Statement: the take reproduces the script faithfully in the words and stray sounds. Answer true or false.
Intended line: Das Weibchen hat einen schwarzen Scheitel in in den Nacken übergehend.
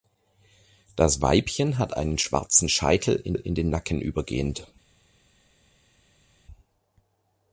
true